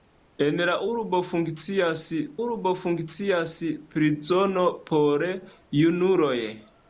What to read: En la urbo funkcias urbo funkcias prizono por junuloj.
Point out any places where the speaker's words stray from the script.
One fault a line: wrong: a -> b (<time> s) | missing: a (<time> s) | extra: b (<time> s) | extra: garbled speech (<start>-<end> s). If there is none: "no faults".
no faults